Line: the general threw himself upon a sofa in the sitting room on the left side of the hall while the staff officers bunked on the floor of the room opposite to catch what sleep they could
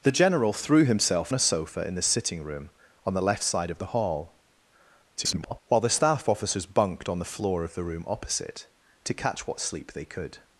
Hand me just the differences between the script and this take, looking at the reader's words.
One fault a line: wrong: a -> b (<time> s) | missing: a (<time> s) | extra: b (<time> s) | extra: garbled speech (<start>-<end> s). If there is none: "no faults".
missing: upon (1.3 s)
extra: garbled speech (5.2-5.6 s)